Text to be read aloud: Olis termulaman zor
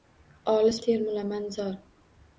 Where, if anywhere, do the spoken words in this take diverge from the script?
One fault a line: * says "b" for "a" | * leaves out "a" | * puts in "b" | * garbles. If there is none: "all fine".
all fine